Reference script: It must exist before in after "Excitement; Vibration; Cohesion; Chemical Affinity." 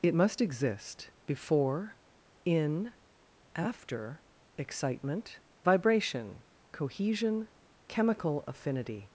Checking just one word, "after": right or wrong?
right